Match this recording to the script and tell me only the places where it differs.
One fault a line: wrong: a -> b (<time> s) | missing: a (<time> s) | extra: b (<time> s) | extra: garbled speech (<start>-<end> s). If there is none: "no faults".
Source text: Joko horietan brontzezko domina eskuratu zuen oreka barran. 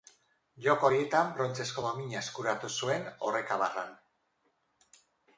no faults